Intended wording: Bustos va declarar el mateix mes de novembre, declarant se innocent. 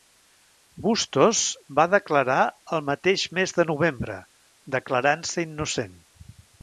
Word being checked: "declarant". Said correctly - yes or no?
yes